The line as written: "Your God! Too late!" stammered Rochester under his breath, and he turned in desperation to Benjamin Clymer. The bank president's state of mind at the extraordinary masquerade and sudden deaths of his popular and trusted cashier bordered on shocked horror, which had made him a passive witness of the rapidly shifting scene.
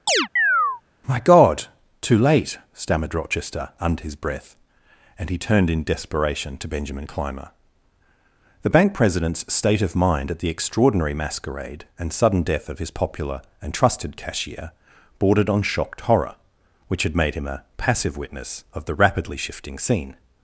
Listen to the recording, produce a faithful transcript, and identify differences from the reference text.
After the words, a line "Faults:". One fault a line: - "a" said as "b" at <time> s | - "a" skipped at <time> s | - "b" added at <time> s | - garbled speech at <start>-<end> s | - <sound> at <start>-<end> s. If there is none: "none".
"My God! Too late!" stammered Rochester under his breath, and he turned in desperation to Benjamin Clymer. The bank president's state of mind at the extraordinary masquerade and sudden death of his popular and trusted cashier bordered on shocked horror, which had made him a passive witness of the rapidly shifting scene.
Faults:
- chirp at 0.1-0.8 s
- "Your" said as "My" at 1.1 s
- "deaths" said as "death" at 12.4 s